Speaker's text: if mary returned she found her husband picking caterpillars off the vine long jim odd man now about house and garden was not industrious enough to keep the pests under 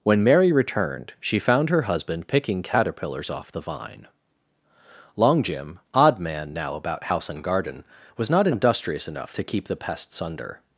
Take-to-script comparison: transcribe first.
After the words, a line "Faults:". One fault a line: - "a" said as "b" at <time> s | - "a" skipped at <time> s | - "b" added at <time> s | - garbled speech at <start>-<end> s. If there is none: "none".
when mary returned she found her husband picking caterpillars off the vine long jim odd man now about house and garden was not industrious enough to keep the pests under
Faults:
- "if" said as "when" at 0.0 s